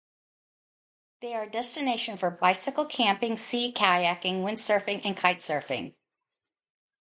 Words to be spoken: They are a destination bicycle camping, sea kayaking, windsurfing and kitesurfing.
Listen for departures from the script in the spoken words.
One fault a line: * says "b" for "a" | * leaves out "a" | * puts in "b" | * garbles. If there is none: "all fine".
* puts in "for"